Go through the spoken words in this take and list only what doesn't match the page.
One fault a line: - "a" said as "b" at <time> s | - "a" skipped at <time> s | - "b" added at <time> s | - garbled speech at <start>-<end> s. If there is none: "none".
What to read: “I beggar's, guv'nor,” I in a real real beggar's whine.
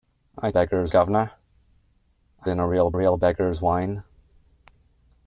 none